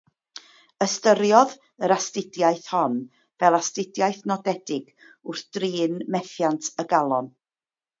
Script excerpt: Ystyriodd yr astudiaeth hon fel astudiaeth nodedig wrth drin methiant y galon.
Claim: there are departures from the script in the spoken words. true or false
false